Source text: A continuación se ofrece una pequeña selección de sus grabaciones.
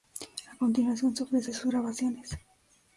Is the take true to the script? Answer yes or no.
no